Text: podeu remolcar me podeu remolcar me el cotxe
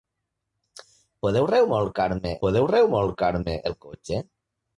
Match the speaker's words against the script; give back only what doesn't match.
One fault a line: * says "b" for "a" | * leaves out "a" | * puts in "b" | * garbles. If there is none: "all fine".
all fine